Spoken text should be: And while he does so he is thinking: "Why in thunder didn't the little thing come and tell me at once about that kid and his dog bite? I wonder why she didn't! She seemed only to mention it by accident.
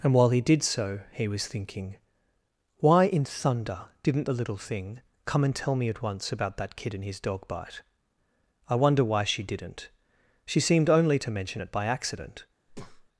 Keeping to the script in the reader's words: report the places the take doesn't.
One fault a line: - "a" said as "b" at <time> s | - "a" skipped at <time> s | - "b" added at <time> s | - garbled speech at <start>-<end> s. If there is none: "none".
- "does" said as "did" at 0.4 s
- "is" said as "was" at 1.3 s